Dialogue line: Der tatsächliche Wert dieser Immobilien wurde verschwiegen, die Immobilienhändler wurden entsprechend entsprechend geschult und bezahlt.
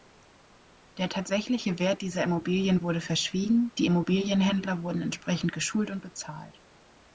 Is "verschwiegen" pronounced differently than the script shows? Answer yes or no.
no